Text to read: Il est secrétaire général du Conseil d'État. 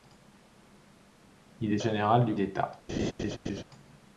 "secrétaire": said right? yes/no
no